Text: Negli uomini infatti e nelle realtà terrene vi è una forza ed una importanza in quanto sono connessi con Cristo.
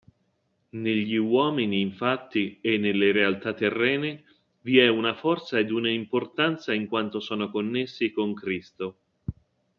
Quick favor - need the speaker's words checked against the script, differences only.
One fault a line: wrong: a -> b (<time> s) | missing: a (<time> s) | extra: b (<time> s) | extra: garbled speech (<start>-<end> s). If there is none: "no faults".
no faults